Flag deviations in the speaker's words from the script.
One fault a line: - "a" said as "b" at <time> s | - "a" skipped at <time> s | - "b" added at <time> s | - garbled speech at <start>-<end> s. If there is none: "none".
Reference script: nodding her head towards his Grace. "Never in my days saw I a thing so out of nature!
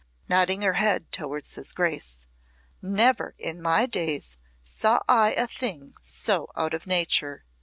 none